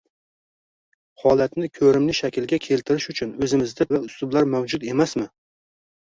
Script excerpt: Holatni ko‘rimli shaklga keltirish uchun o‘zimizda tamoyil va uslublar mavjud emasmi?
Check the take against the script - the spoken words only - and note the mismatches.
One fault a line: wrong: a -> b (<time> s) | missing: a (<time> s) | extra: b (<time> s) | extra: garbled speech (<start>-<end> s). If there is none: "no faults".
missing: tamoyil (3.9 s)